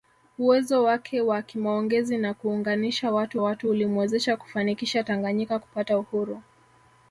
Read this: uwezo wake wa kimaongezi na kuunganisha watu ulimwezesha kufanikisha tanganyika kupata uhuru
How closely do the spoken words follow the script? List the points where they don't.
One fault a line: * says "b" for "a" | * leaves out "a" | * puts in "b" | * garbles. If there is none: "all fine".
* puts in "watu"